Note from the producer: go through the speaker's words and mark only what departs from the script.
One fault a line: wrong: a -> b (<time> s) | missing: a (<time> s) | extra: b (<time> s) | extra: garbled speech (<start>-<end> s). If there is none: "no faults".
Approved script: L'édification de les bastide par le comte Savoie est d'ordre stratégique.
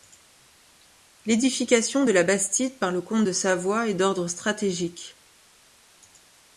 wrong: les -> la (2.1 s)
extra: de (3.2 s)